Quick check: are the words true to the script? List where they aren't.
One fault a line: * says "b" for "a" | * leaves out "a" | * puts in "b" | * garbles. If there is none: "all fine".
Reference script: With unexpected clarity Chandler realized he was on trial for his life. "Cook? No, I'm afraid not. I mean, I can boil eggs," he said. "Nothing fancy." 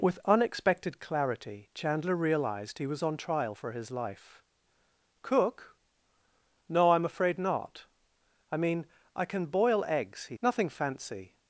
* leaves out "said"